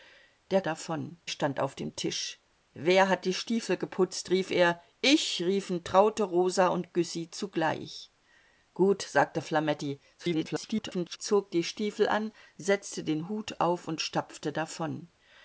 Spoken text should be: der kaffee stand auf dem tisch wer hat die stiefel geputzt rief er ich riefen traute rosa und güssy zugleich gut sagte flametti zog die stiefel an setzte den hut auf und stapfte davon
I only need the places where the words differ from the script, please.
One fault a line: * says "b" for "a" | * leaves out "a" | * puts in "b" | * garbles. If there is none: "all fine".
* says "davon" for "kaffee"
* garbles